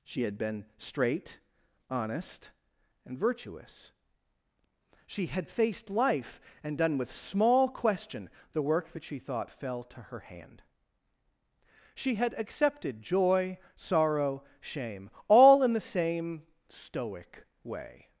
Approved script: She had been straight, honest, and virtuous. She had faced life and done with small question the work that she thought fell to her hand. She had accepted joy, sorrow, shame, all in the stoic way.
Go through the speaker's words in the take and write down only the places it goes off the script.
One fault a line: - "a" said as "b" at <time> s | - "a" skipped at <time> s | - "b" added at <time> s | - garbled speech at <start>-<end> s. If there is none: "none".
- "same" added at 15.8 s